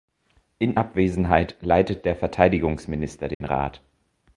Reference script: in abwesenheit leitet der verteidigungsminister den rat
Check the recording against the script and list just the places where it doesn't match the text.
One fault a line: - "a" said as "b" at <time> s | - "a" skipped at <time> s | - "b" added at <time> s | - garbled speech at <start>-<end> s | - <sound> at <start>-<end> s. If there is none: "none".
- dropout at 3.3-3.4 s